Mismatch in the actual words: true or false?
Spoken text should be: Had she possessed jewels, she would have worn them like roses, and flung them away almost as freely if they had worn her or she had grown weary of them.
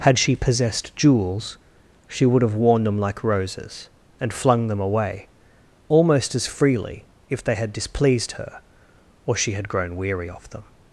true